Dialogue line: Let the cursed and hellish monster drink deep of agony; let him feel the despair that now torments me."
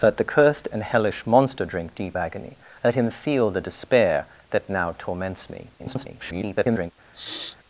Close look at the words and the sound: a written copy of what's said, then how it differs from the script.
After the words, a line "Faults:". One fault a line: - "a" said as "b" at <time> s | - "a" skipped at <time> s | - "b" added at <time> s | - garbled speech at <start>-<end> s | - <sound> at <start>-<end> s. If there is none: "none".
Let the cursed and hellish monster drink deep agony; let him feel the despair that now torments me." [garbled]
Faults:
- "of" skipped at 2.2 s
- garbled speech at 5.8-6.9 s
- sniff at 7.1-7.6 s